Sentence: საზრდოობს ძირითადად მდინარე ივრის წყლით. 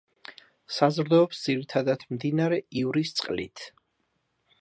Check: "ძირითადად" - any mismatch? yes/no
no